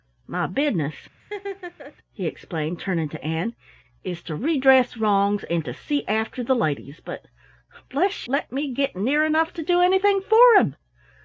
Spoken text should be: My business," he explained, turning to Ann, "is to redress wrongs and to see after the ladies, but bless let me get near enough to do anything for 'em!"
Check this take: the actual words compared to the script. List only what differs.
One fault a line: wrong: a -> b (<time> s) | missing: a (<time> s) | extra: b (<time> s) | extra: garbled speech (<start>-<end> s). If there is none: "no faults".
no faults